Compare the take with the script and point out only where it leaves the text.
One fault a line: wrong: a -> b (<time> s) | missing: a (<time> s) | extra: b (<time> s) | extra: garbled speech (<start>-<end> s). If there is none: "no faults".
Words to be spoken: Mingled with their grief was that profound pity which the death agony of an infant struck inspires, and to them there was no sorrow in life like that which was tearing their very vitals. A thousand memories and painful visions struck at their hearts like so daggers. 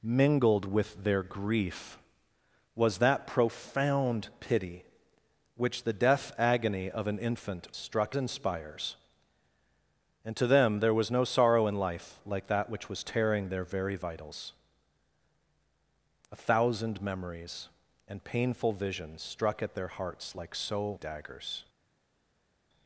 no faults